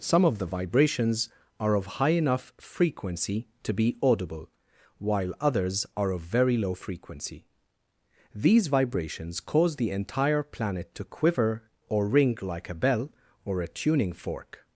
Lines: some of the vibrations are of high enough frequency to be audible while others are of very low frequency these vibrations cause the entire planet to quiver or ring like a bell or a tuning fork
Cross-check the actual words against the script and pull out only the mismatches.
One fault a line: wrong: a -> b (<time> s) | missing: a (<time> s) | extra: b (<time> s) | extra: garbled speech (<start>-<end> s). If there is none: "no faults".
no faults